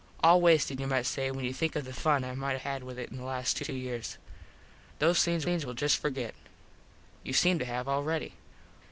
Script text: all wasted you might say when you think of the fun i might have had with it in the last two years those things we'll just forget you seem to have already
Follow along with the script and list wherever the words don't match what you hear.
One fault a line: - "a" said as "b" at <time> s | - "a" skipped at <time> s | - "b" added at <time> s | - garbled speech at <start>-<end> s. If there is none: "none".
- "have" skipped at 2.6 s
- "two" added at 3.6 s
- "things" added at 5.4 s